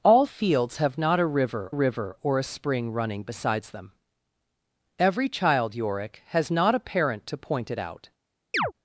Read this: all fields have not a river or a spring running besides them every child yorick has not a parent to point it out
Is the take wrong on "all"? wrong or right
right